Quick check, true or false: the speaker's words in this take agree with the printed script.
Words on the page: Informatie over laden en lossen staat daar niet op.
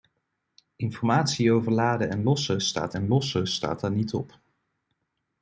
false